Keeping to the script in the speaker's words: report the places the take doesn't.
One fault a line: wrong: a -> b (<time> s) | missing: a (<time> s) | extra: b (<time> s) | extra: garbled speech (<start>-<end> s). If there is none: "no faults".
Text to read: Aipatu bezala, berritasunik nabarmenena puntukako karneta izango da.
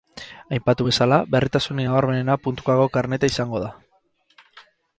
no faults